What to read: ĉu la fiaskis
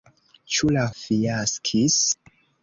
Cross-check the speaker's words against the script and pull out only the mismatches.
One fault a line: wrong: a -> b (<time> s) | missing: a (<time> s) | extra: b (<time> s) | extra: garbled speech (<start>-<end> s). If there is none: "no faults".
no faults